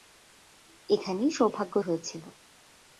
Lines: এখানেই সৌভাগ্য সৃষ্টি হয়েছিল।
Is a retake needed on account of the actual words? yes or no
yes